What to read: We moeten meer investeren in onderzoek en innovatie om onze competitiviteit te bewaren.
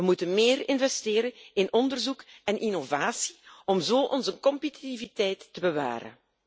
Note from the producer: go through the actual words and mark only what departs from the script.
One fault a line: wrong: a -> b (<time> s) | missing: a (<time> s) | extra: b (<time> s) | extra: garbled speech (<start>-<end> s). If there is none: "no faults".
extra: zo (3.8 s)